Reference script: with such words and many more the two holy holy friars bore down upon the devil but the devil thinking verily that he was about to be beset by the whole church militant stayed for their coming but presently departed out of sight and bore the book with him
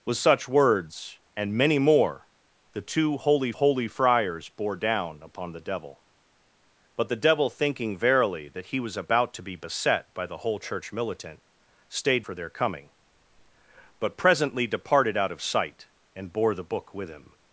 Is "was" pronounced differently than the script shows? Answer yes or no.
no